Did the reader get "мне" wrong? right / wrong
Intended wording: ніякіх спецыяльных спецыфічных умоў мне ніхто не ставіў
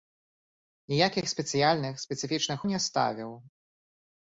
wrong